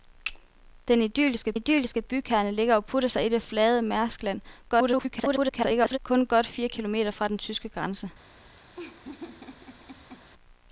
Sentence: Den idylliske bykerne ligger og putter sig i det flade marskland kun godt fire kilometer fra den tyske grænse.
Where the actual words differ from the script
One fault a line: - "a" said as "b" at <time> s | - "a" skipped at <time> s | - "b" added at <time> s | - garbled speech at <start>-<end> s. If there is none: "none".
- "idylliske" added at 1.5 s
- garbled speech at 4.7-6.0 s